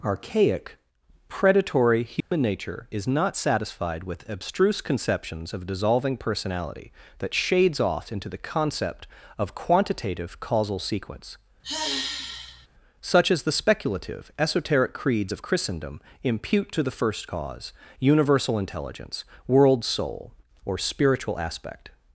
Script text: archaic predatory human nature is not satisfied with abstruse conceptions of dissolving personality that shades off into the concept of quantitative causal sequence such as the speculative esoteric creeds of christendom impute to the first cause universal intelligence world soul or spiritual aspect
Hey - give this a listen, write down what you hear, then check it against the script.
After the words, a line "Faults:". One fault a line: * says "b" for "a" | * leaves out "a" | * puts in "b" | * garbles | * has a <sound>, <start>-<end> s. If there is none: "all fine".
archaic predatory human nature is not satisfied with abstruse conceptions of dissolving personality that shades off into the concept of quantitative causal sequence such as the speculative esoteric creeds of christendom impute to the first cause universal intelligence world soul or spiritual aspect
Faults:
* has a dropout, 2.2-2.3 s
* has a sigh, 11.6-12.7 s